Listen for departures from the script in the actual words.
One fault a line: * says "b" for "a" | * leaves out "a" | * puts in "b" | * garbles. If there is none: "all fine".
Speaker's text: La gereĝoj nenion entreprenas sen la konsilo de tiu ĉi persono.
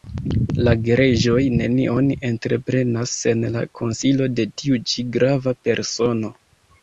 * puts in "grava"